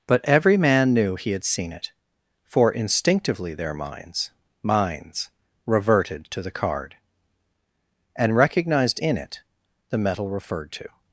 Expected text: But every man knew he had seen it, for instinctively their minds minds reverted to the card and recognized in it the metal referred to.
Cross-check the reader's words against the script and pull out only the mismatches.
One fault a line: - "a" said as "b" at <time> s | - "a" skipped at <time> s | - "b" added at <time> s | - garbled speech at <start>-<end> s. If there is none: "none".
none